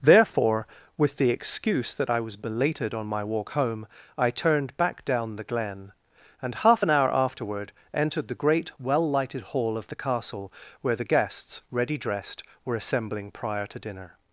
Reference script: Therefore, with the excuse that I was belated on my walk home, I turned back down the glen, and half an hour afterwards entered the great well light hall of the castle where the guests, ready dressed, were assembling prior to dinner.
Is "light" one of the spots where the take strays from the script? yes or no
yes